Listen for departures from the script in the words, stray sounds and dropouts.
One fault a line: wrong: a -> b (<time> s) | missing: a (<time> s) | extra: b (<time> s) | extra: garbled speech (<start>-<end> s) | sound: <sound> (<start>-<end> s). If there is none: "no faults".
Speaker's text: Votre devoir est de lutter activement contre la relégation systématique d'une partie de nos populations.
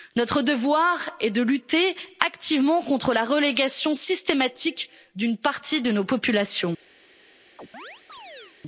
wrong: Votre -> Notre (0.1 s)
sound: chirp (7.6-8.6 s)